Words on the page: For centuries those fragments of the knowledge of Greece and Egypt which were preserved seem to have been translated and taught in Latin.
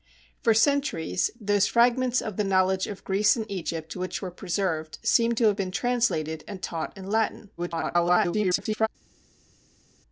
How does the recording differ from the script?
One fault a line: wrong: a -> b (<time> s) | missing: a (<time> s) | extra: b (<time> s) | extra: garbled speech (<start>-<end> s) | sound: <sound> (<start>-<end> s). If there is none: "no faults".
extra: garbled speech (7.6-8.9 s)